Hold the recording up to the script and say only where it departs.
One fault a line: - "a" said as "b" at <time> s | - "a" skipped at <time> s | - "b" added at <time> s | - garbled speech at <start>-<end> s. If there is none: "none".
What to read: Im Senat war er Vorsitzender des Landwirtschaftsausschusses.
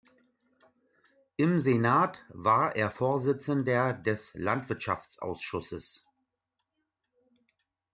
none